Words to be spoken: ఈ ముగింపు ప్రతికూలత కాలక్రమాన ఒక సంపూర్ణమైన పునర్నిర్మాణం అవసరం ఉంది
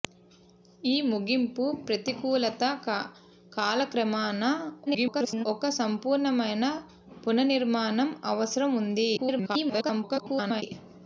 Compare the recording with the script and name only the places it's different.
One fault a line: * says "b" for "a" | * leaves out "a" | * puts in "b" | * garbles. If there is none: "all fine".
* garbles
* garbles